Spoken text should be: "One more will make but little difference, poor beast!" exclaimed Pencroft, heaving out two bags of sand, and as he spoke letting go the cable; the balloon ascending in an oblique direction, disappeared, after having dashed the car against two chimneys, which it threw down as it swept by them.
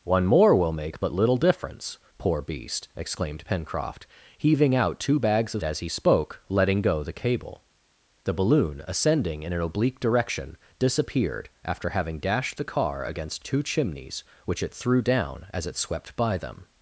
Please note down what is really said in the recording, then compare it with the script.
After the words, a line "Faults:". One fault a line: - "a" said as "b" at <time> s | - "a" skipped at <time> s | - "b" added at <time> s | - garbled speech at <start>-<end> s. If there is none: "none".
"One more will make but little difference, poor beast!" exclaimed Pencroft, heaving out two bags of as he spoke letting go the cable; the balloon ascending in an oblique direction, disappeared, after having dashed the car against two chimneys, which it threw down as it swept by them.
Faults:
- "sand and" skipped at 5.6 s